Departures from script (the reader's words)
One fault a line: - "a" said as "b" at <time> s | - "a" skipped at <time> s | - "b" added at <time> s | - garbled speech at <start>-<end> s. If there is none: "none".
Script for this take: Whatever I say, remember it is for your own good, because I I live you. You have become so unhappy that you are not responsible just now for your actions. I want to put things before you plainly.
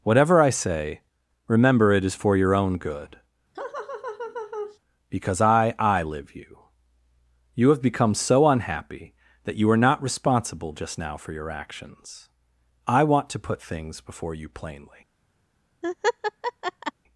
none